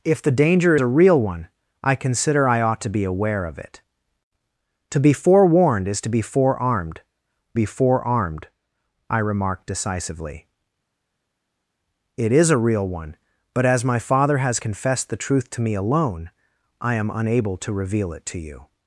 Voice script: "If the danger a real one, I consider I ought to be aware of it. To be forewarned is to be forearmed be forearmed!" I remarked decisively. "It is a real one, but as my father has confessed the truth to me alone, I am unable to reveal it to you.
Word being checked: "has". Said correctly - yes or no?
yes